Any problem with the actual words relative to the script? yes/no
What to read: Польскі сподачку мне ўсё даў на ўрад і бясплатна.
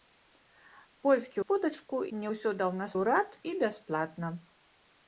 no